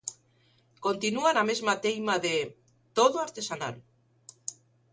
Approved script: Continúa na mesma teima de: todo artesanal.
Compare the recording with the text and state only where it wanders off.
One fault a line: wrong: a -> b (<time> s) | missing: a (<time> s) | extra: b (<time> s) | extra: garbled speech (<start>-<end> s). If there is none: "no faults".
no faults